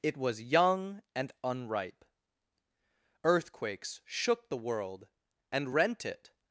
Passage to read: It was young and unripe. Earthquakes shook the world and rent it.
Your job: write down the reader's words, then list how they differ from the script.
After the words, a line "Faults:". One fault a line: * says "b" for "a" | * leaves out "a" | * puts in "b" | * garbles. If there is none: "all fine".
It was young and unripe. Earthquakes shook the world and rent it.
Faults:
all fine